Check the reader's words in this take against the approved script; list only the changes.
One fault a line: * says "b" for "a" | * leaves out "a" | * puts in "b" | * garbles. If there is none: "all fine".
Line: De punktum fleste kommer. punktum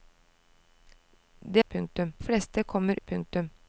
all fine